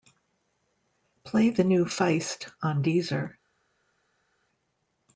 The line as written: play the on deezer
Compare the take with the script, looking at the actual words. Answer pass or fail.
fail